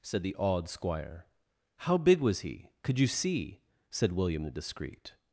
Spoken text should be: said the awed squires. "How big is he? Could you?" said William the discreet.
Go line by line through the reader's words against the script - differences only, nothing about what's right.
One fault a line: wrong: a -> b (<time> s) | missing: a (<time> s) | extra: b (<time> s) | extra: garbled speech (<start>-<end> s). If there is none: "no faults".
wrong: squires -> squire (0.7 s)
wrong: is -> was (2.2 s)
extra: see (3.1 s)